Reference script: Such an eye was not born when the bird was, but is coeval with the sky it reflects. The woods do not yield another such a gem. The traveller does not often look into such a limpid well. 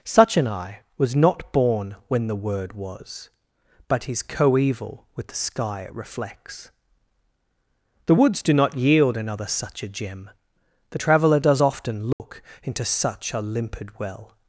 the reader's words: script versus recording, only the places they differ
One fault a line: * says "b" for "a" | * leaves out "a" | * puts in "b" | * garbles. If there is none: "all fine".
* says "word" for "bird"
* leaves out "not"